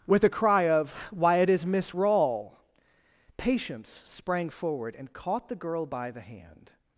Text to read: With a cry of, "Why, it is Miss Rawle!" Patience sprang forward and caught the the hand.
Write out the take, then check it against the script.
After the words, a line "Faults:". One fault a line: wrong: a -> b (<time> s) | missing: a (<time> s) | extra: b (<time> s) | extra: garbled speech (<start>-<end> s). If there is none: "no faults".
With a cry of, "Why, it is Miss Rawle!" Patience sprang forward and caught the girl by the hand.
Faults:
extra: girl by (5.5 s)